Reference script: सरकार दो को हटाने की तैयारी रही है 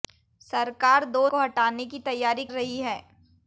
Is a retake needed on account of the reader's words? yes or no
no